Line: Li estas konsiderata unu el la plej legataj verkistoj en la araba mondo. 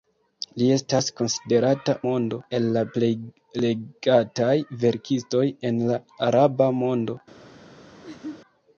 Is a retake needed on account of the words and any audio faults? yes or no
yes